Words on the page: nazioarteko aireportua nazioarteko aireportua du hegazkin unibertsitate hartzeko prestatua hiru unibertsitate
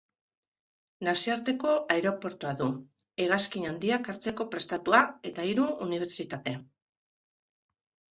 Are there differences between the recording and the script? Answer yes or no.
yes